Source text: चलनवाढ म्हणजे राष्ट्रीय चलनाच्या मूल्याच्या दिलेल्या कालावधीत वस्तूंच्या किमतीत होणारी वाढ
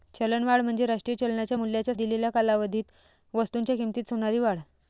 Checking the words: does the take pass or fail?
pass